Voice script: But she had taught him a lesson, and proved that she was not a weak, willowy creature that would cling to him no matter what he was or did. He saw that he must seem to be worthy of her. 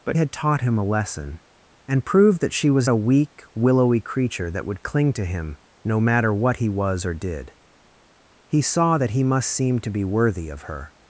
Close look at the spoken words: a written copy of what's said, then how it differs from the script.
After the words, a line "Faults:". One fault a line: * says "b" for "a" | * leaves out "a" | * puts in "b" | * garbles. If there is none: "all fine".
But had taught him a lesson, and proved that she was a weak, willowy creature that would cling to him no matter what he was or did. He saw that he must seem to be worthy of her.
Faults:
* leaves out "she"
* leaves out "not"